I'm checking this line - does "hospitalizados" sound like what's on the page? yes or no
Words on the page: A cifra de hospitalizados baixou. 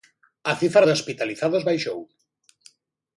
yes